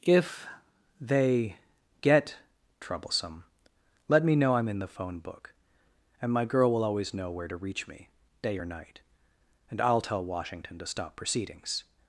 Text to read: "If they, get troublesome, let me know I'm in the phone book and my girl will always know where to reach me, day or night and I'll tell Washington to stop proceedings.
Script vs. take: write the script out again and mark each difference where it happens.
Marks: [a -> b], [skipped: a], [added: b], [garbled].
"If they, get troublesome, let me know I'm in the phone book and my girl will always know where to reach me, day or night and I'll tell Washington to stop proceedings.